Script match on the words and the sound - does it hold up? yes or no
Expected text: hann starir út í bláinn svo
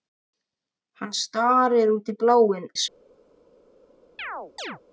no